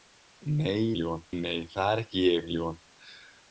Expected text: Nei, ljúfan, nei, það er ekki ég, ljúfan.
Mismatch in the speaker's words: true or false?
false